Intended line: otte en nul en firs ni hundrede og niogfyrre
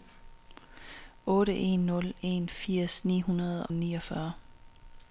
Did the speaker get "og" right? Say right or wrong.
wrong